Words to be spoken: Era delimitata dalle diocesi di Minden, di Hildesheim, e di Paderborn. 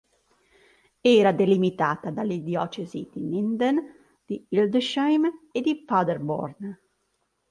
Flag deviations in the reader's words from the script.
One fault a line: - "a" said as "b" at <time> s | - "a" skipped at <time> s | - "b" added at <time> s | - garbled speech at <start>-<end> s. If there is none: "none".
none